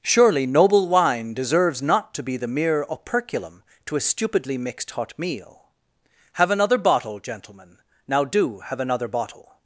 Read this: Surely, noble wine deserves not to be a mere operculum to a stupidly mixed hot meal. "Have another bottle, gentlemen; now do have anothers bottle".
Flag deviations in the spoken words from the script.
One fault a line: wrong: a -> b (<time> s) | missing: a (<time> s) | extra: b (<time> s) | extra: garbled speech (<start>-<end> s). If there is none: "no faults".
wrong: a -> the (2.4 s)
wrong: anothers -> another (8.8 s)